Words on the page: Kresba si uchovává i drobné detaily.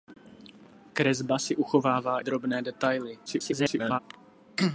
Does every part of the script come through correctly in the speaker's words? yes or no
no